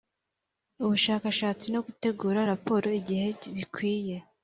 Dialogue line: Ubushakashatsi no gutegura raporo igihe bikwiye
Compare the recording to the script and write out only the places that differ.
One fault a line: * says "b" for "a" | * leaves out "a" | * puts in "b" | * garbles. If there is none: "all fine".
all fine